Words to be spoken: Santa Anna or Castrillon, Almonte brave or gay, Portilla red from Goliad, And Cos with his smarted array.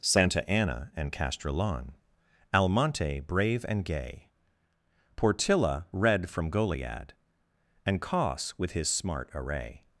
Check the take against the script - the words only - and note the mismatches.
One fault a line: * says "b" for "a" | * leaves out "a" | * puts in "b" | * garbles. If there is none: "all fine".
* says "and" for "or"
* says "and" for "or"
* says "smart" for "smarted"